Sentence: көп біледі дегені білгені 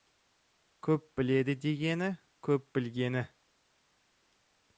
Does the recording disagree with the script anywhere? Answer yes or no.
yes